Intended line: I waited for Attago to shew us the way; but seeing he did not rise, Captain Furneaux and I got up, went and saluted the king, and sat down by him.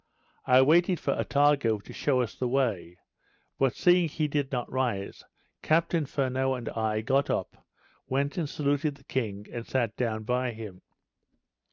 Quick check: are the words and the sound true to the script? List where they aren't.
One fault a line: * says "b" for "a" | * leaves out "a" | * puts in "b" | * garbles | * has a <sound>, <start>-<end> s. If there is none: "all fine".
all fine